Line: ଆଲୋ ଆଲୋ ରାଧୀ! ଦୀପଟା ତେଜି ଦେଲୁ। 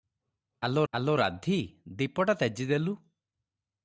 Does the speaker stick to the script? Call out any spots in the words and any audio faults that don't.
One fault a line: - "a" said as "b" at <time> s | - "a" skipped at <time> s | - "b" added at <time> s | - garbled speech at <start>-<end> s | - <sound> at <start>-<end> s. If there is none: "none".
none